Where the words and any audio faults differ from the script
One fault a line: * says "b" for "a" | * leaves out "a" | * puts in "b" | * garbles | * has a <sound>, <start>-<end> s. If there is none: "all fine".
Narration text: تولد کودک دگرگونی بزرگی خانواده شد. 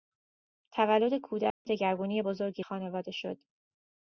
* has a dropout, 1.5-1.7 s